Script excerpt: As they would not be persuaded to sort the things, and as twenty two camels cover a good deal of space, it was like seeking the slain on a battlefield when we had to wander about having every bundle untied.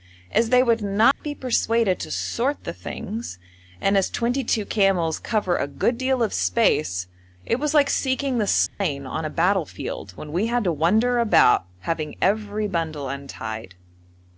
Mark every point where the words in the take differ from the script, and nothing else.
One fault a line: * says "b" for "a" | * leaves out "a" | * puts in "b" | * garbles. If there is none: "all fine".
all fine